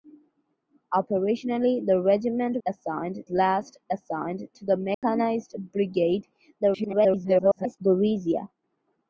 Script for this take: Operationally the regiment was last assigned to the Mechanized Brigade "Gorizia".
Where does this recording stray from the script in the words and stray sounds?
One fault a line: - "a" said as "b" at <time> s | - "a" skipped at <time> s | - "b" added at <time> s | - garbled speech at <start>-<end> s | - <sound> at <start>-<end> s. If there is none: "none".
- "was" said as "assigned" at 2.7 s
- dropout at 4.9-5.0 s
- garbled speech at 6.6-7.8 s